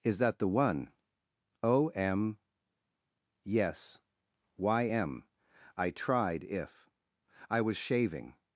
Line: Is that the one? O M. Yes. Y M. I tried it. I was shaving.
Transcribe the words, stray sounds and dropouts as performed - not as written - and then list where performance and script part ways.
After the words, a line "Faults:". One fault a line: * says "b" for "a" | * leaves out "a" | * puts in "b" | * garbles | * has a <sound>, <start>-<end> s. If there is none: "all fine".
Is that the one? O M. Yes. Y M. I tried if. I was shaving.
Faults:
* says "if" for "it"